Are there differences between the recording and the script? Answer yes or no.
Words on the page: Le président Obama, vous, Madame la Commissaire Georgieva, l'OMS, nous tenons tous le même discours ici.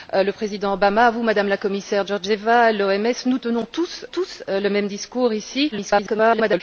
yes